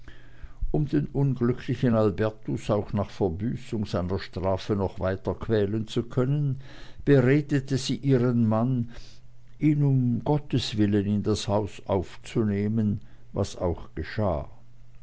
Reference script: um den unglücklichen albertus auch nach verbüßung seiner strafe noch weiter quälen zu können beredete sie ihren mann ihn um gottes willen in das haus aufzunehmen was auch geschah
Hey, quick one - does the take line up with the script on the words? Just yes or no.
yes